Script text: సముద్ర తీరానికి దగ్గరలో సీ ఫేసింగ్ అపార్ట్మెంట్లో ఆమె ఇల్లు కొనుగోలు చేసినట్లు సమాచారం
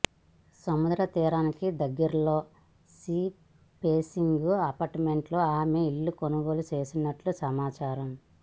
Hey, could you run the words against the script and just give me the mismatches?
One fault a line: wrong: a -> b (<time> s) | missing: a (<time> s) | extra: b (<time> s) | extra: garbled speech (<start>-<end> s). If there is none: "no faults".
no faults